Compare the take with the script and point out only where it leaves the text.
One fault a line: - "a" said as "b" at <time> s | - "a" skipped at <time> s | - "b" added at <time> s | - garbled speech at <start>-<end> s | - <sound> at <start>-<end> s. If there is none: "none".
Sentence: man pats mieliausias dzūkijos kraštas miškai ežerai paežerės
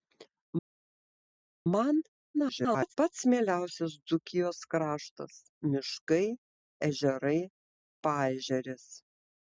- garbled speech at 2.3-2.9 s